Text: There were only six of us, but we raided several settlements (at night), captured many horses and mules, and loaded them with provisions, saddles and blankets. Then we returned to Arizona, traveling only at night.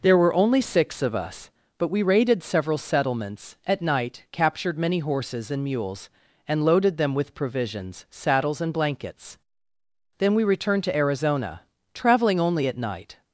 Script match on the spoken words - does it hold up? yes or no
yes